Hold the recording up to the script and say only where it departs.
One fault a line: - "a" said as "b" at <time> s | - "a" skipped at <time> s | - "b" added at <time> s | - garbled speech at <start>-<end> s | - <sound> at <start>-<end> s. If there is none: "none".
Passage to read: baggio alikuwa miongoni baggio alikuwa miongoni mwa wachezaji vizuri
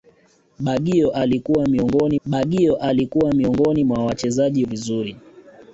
none